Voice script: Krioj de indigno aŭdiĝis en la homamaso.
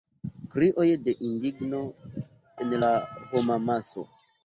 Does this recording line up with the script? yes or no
no